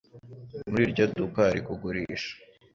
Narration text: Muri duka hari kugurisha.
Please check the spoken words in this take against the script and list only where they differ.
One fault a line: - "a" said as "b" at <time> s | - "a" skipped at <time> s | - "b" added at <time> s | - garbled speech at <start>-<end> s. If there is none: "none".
- "iryo" added at 0.9 s